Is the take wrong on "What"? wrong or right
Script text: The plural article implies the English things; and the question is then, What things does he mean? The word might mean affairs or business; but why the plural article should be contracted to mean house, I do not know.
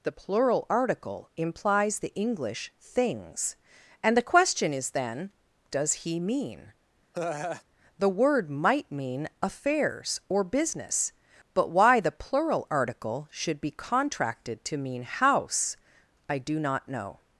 wrong